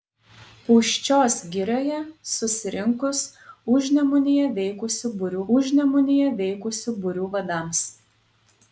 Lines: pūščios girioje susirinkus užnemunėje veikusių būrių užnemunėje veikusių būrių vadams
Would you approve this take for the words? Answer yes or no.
yes